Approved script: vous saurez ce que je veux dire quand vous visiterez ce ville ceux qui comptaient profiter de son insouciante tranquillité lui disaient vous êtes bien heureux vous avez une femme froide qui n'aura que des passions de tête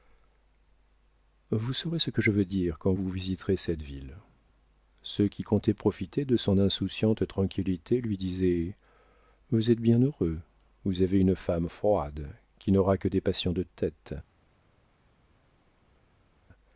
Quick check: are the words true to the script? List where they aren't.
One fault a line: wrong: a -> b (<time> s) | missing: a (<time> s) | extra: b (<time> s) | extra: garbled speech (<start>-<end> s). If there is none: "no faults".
wrong: ce -> cette (3.6 s)